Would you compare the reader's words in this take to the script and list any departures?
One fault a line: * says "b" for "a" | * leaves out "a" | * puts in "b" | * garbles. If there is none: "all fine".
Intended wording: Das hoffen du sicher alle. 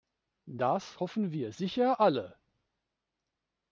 * says "wir" for "du"